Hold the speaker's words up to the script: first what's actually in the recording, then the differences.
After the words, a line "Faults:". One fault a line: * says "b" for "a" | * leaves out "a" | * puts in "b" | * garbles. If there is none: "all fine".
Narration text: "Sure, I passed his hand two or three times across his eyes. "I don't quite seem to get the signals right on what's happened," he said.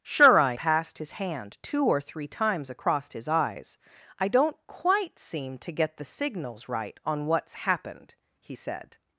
"Sure, I passed his hand two or three times across his eyes. "I don't quite seem to get the signals right on what's happened," he said.
Faults:
all fine